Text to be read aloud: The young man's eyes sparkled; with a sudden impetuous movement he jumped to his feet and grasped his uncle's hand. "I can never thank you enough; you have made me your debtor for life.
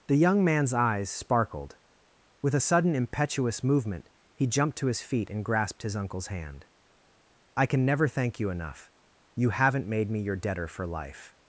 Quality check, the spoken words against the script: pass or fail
fail